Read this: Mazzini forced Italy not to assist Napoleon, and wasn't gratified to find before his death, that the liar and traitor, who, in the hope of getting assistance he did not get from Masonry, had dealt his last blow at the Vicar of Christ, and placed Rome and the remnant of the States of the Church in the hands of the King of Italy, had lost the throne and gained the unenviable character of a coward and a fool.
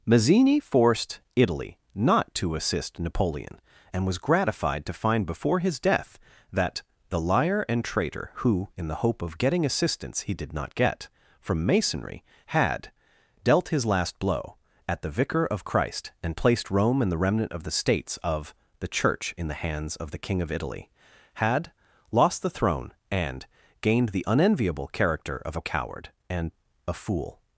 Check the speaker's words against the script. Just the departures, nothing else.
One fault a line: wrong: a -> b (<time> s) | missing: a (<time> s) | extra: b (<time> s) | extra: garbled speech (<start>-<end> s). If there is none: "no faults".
wrong: wasn't -> was (4.1 s)